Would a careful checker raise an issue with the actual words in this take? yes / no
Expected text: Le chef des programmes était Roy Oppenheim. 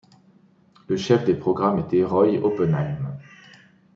no